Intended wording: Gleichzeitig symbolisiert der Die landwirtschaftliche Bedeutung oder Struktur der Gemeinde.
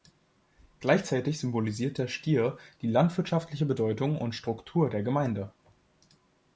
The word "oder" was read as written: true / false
false